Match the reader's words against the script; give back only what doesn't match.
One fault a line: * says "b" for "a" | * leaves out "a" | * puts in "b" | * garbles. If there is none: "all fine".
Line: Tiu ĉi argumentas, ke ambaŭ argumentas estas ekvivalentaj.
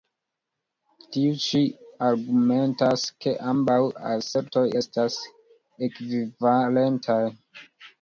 * says "asertoj" for "argumentas"